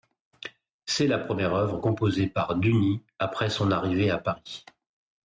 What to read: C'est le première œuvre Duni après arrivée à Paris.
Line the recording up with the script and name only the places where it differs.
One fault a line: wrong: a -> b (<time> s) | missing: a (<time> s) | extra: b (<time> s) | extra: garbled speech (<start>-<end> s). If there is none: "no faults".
wrong: le -> la (1.1 s)
extra: composée par (1.8 s)
extra: son (3.5 s)